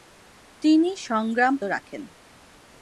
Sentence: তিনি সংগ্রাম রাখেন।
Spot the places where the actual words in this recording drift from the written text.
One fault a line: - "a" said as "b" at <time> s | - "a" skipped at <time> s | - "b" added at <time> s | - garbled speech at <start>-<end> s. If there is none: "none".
none